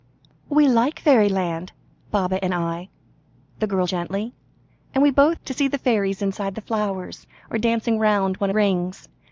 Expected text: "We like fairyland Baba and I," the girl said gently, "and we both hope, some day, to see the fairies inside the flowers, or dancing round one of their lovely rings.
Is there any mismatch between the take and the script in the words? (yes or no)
yes